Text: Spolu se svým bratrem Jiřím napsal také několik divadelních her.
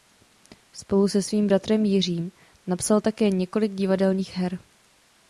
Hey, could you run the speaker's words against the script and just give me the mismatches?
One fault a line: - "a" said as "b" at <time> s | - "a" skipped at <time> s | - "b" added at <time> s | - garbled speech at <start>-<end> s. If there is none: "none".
none